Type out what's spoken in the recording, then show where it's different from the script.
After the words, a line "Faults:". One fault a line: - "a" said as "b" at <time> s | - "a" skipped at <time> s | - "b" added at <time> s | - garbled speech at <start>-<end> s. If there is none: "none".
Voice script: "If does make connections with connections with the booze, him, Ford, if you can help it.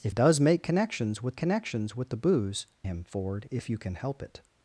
"If does make connections with connections with the booze, him, Ford, if you can help it.
Faults:
none